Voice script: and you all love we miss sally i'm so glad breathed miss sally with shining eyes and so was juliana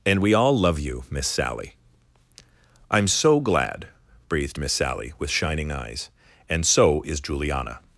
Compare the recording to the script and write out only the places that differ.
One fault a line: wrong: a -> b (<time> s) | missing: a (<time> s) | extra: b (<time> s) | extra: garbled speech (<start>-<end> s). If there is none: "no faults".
wrong: you -> we (0.2 s)
wrong: we -> you (0.8 s)
wrong: was -> is (7.0 s)